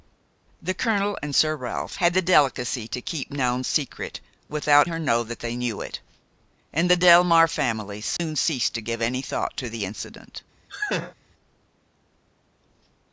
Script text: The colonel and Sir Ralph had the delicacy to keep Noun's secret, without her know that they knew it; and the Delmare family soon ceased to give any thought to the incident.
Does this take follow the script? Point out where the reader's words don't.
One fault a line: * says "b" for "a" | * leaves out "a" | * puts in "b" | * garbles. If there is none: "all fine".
all fine